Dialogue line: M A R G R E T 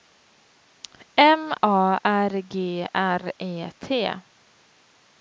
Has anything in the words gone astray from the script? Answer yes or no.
no